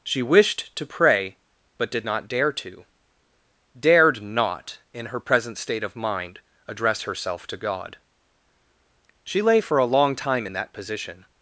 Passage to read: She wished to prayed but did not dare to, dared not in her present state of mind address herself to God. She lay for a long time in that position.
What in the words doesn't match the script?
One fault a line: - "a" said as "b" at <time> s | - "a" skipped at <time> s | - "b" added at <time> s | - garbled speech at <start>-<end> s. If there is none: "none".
- "prayed" said as "pray" at 0.8 s